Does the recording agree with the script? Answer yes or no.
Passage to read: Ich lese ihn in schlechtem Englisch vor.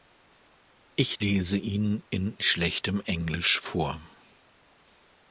yes